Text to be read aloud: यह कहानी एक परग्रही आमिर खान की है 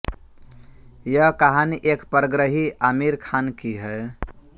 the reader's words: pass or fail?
pass